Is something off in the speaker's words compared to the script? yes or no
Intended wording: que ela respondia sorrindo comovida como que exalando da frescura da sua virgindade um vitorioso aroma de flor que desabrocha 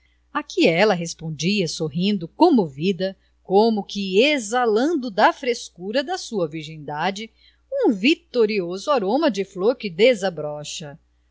no